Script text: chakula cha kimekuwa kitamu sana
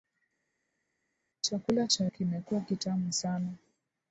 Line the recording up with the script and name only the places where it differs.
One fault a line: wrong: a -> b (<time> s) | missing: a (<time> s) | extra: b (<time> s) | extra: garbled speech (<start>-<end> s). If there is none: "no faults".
no faults